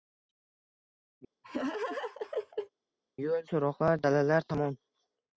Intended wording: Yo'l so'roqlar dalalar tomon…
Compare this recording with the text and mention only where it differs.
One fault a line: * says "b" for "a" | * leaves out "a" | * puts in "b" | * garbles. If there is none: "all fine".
all fine